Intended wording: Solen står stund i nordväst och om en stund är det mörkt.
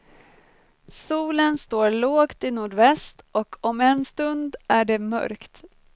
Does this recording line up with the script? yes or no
no